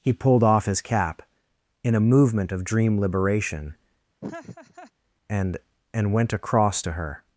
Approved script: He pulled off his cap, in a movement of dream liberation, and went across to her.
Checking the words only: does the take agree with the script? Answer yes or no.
no